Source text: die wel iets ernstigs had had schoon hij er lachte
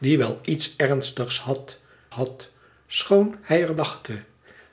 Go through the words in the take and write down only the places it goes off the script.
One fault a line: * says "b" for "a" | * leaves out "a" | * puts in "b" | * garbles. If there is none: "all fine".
all fine